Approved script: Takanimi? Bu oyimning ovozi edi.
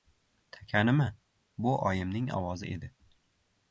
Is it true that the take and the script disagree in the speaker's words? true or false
false